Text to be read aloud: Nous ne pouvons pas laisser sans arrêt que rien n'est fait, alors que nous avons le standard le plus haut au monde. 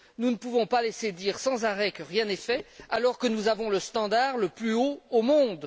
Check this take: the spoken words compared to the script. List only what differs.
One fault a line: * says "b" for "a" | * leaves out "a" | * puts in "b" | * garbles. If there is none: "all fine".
* puts in "dire"